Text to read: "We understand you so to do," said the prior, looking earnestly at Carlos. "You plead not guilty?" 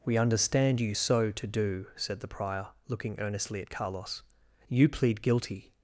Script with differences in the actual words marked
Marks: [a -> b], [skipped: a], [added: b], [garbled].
"We understand you so to do," said the prior, looking earnestly at Carlos. "You plead [skipped: not] guilty?"